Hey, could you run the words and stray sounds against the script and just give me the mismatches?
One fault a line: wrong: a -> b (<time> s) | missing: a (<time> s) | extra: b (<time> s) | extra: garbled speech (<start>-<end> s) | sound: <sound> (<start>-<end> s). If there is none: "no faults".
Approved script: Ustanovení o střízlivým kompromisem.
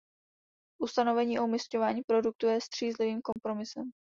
extra: umisťování produktu je (1.4 s)
sound: dropout (3.3-3.4 s)